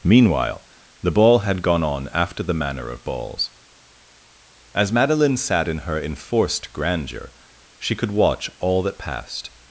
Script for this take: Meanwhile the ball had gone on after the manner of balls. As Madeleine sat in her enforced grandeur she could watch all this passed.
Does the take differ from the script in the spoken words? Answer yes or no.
yes